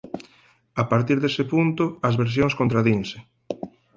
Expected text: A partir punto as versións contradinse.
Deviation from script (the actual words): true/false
true